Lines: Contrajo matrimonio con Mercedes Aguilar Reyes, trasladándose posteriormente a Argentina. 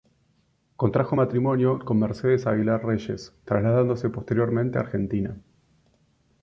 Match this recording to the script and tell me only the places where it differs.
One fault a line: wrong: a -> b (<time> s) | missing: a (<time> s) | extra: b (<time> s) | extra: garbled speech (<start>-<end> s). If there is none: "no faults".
no faults